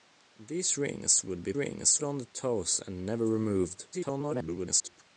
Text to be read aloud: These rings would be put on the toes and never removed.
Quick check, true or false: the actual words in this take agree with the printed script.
false